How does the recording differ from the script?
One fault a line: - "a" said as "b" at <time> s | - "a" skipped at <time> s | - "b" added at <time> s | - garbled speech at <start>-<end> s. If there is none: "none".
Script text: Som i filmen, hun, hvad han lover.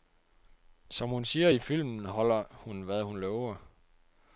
- "hun siger" added at 1.1 s
- "holder" added at 2.0 s
- "han" said as "hun" at 3.0 s